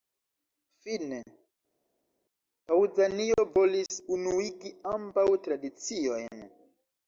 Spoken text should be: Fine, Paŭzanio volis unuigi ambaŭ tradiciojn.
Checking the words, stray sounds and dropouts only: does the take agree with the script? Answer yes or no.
yes